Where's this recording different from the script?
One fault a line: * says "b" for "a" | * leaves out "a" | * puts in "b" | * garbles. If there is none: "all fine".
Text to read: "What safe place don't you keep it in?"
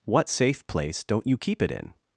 all fine